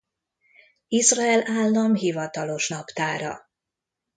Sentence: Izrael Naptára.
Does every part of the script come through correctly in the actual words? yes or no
no